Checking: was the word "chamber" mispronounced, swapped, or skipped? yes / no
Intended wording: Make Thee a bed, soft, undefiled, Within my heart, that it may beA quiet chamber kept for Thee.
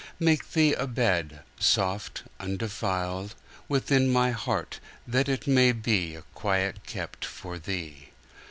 yes